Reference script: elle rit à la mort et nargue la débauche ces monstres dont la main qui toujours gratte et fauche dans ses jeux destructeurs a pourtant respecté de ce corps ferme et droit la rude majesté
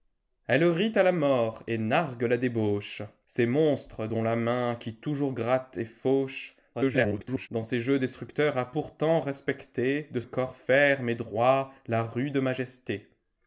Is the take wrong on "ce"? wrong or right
wrong